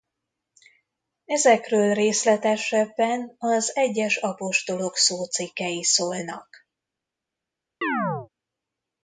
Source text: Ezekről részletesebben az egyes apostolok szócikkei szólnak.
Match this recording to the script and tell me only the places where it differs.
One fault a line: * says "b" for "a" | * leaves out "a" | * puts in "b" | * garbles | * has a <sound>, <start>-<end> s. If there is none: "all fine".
* has a chirp, 7.8-8.3 s